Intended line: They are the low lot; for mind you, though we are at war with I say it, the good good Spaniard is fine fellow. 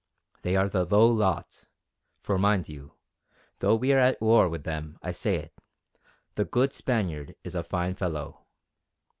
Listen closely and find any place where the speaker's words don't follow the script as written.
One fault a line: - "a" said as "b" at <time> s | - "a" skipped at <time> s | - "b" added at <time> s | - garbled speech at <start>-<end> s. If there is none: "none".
- "them" added at 4.6 s
- "good" skipped at 6.7 s
- "a" added at 7.5 s